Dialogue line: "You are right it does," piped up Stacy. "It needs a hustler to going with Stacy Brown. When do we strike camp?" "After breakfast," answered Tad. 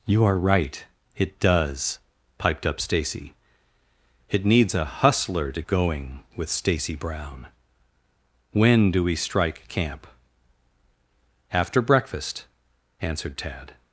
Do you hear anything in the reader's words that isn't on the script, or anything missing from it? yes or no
no